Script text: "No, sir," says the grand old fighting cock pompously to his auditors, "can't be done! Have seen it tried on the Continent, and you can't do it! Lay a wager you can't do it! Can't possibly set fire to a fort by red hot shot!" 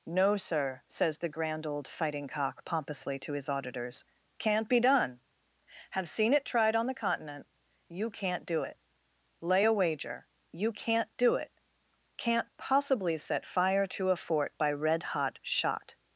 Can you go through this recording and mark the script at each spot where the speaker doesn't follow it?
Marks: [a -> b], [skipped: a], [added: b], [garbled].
"No, sir," says the grand old fighting cock pompously to his auditors, "can't be done! Have seen it tried on the Continent, [skipped: and] you can't do it! Lay a wager you can't do it! Can't possibly set fire to a fort by red hot shot!"